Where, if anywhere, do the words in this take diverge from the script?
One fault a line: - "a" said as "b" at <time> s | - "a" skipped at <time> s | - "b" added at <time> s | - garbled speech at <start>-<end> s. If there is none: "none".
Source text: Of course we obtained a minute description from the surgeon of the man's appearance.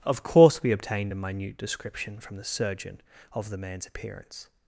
none